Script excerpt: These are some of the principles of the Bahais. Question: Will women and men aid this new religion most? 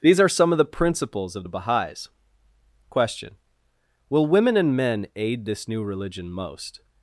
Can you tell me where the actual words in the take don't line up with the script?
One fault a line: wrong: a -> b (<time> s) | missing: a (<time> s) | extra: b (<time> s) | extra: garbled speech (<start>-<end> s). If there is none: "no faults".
no faults